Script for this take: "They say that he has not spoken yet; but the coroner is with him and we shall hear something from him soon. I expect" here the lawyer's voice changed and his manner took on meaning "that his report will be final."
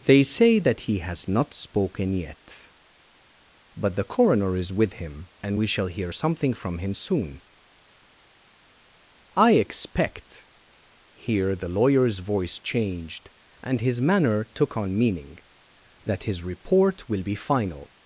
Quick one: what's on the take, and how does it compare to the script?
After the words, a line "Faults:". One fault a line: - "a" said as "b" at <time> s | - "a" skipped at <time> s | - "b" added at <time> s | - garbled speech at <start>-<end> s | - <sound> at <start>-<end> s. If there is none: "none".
"They say that he has not spoken yet; but the coroner is with him and we shall hear something from him soon. I expect" here the lawyer's voice changed and his manner took on meaning "that his report will be final."
Faults:
none